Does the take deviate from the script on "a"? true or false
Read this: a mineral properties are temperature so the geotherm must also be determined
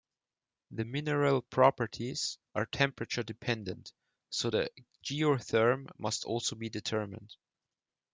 true